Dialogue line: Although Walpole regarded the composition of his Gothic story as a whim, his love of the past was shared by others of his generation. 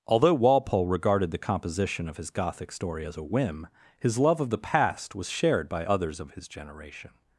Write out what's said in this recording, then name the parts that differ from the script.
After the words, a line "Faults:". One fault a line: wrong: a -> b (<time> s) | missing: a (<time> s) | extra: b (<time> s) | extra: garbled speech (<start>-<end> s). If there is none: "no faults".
Although Walpole regarded the composition of his Gothic story as a whim, his love of the past was shared by others of his generation.
Faults:
no faults